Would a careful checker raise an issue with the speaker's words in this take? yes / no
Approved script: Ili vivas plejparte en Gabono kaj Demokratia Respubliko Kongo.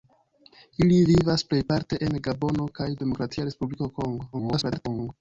yes